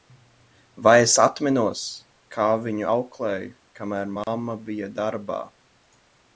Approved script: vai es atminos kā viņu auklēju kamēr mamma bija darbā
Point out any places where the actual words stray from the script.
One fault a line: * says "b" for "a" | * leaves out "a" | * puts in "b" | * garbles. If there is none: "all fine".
all fine